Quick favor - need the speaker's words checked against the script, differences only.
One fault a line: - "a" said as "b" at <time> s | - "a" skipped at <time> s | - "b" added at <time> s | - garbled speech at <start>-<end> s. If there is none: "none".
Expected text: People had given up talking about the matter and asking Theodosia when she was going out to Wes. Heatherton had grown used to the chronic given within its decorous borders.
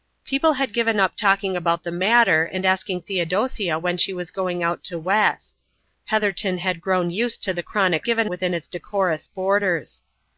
none